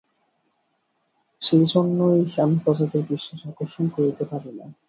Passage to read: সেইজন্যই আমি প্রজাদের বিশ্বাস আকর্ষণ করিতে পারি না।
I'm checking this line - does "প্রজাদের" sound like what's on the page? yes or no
yes